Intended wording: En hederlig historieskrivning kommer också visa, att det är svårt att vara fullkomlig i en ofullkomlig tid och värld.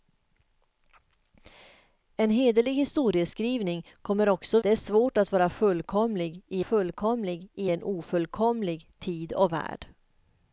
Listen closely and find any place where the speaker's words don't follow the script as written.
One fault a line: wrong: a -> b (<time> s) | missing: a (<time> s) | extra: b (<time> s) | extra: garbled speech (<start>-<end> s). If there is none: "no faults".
missing: visa att (4.6 s)
extra: fullkomlig i (6.6 s)